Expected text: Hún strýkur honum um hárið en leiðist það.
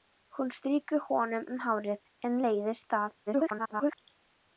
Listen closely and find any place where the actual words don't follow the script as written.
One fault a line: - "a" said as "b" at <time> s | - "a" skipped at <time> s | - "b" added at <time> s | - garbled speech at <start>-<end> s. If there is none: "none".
- garbled speech at 3.3-4.0 s